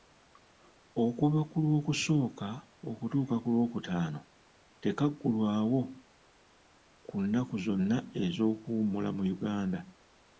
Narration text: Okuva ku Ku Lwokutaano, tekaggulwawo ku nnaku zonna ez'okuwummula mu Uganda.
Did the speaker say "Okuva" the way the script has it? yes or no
yes